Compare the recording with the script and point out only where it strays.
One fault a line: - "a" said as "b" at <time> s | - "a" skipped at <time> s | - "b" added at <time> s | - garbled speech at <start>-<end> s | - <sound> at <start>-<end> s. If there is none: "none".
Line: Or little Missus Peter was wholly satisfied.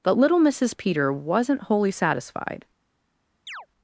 - "Or" said as "But" at 0.0 s
- "was" said as "wasn't" at 1.1 s
- chirp at 3.5-3.7 s